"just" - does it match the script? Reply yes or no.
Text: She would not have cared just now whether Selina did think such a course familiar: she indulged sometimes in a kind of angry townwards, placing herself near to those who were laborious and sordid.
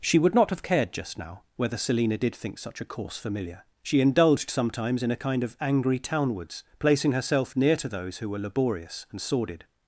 yes